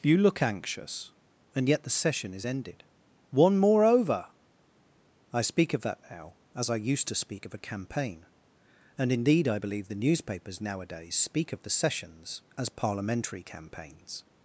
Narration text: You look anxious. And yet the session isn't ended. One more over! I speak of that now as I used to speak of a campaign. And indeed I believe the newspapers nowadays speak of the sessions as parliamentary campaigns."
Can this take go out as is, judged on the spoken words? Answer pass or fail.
fail